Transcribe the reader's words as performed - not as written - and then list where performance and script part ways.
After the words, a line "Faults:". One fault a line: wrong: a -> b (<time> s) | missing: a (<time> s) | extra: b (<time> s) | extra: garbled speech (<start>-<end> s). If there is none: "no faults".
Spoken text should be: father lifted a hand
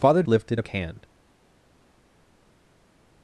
father lifted a hand
Faults:
no faults